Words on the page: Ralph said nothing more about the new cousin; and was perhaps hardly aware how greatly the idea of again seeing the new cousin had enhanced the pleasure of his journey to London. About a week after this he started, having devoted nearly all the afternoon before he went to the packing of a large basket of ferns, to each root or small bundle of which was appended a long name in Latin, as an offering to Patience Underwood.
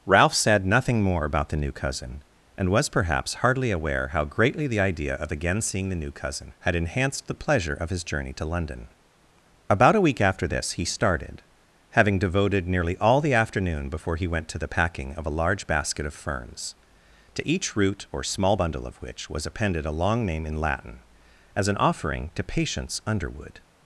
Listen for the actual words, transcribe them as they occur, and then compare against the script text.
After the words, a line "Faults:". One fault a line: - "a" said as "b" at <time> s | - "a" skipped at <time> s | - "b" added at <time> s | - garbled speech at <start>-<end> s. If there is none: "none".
Ralph said nothing more about the new cousin; and was perhaps hardly aware how greatly the idea of again seeing the new cousin had enhanced the pleasure of his journey to London. About a week after this he started, having devoted nearly all the afternoon before he went to the packing of a large basket of ferns, to each root or small bundle of which was appended a long name in Latin, as an offering to Patience Underwood.
Faults:
none